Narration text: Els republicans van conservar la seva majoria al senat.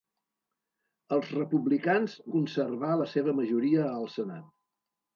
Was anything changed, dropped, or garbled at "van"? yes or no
yes